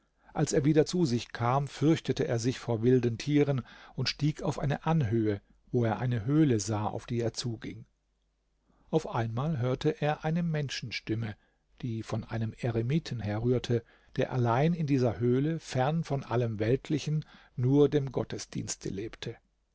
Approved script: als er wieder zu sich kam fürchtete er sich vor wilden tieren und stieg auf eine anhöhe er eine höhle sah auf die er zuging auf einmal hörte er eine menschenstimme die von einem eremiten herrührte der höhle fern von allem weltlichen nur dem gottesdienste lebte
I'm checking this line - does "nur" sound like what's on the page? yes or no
yes